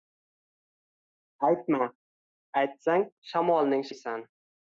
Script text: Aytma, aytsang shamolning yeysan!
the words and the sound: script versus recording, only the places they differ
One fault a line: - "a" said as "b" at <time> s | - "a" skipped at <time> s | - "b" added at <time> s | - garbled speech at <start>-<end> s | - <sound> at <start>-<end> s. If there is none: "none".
none